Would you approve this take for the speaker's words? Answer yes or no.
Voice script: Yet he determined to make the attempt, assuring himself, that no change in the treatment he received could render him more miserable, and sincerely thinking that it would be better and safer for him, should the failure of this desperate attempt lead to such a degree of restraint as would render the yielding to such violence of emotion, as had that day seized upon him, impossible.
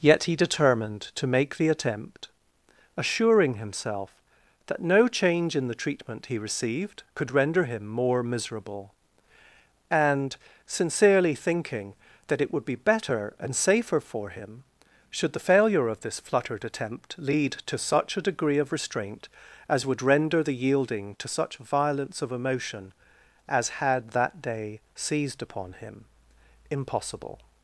no